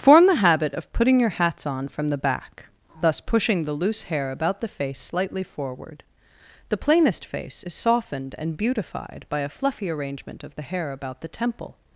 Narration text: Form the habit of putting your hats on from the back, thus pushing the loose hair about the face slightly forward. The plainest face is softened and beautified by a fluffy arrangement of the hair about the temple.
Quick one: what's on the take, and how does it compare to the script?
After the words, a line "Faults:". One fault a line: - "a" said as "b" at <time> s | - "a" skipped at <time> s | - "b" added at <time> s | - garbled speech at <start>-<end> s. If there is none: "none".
Form the habit of putting your hats on from the back, thus pushing the loose hair about the face slightly forward. The plainest face is softened and beautified by a fluffy arrangement of the hair about the temple.
Faults:
none